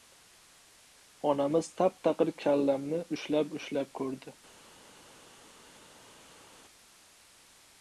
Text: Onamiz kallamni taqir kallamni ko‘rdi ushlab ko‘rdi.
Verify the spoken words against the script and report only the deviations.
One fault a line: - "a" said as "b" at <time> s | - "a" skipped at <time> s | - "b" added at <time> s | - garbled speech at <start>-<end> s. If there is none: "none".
- "kallamni" said as "tap" at 1.8 s
- "ko‘rdi" said as "ushlab" at 3.2 s